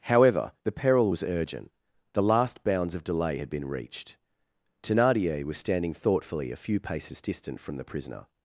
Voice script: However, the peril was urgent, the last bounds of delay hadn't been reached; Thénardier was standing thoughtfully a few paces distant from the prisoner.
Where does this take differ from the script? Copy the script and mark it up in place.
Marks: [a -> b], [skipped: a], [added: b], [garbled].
However, the peril was urgent, the last bounds of delay [hadn't -> had] been reached; Thénardier was standing thoughtfully a few paces distant from the prisoner.